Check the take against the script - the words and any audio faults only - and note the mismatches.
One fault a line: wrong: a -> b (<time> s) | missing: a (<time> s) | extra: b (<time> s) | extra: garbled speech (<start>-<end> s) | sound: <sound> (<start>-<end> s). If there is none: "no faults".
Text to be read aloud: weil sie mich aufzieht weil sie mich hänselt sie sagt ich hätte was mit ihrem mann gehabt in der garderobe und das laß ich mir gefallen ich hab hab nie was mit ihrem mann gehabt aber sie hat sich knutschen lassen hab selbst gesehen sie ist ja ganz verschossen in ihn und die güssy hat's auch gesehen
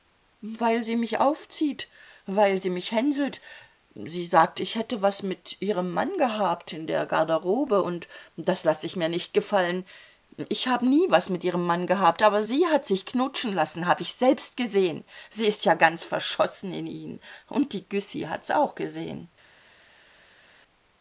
extra: nicht (9.1 s)
missing: hab (10.8 s)
extra: ich (14.0 s)